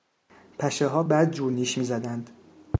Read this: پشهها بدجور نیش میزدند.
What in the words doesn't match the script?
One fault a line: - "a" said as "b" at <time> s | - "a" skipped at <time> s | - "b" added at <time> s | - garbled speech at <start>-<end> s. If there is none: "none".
none